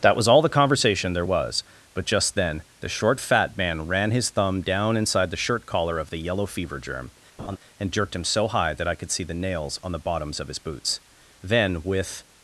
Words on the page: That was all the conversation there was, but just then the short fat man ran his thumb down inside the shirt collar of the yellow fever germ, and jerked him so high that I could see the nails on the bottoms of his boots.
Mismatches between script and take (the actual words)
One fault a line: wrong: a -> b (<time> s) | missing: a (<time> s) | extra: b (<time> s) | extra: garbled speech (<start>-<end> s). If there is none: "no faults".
extra: Then with (11.4 s)